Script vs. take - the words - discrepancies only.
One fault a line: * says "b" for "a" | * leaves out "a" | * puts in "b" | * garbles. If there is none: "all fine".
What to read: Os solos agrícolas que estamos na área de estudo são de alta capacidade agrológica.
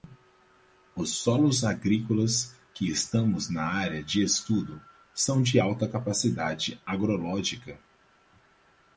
all fine